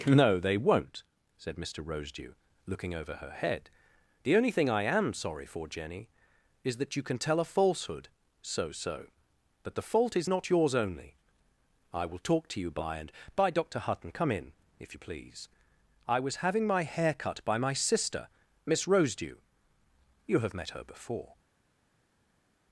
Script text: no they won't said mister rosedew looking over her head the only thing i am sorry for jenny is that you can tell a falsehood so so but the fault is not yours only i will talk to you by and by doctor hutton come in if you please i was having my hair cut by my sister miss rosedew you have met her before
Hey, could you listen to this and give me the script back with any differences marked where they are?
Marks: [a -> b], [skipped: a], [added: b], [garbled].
no they won't said mister rosedew looking over her head the only thing i am sorry for jenny is that you can tell a falsehood so so but the fault is not yours only i will talk to you by and by doctor hutton come in if you please i was having my hair cut by my sister miss rosedew you have met her before